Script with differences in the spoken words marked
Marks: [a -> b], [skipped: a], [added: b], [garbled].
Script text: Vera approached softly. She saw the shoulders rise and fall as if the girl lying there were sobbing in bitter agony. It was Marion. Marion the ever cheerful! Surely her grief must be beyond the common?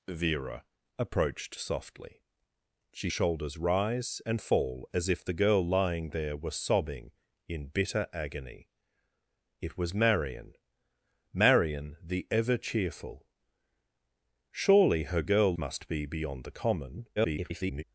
Vera approached softly. She [skipped: saw the] shoulders rise and fall as if the girl lying there were sobbing in bitter agony. It was Marion. Marion the ever cheerful! Surely her [grief -> girl] must be beyond the common? [garbled]